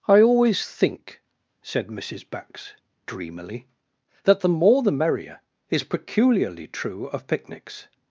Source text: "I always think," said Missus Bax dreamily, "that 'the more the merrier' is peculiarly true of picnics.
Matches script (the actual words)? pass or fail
pass